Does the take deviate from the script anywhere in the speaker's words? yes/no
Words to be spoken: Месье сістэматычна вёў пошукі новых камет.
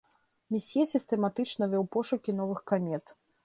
no